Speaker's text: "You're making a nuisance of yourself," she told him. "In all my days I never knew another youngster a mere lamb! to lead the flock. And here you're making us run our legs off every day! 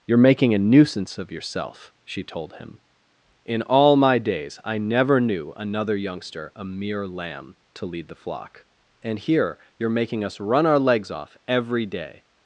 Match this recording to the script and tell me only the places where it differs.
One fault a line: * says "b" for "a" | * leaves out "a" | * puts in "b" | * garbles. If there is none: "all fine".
all fine